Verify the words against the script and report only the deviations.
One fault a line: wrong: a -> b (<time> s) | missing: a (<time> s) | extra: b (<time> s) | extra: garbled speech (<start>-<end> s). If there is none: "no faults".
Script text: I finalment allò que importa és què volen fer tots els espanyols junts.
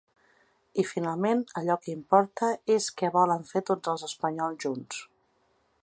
no faults